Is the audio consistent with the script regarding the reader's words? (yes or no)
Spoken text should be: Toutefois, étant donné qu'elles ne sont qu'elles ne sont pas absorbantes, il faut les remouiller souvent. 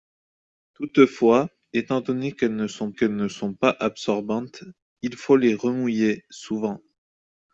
yes